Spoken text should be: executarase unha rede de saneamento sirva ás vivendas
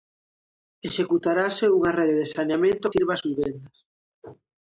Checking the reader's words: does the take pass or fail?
pass